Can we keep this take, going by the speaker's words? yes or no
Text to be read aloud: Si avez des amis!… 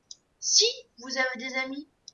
no